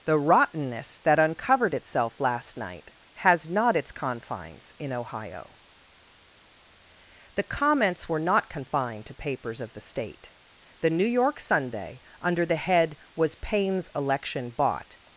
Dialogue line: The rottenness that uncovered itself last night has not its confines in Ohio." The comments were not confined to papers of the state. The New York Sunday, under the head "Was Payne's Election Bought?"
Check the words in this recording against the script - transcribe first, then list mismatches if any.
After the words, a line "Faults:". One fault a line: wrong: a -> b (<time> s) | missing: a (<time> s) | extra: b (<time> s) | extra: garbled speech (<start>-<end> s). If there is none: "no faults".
The rottenness that uncovered itself last night has not its confines in Ohio." The comments were not confined to papers of the state. The New York Sunday, under the head "Was Payne's Election Bought?"
Faults:
no faults